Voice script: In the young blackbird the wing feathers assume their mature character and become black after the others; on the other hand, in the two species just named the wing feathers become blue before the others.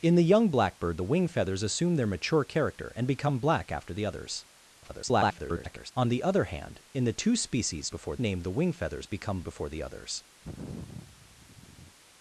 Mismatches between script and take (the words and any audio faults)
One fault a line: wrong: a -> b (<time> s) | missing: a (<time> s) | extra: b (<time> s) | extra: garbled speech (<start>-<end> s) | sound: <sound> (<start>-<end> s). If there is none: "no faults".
extra: garbled speech (4.8-5.9 s)
wrong: just -> before (7.9 s)
missing: blue (9.4 s)
sound: sigh (10.4-12.0 s)